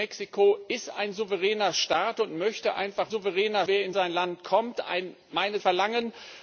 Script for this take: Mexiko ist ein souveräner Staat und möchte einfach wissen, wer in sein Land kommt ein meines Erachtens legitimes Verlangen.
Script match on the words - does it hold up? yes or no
no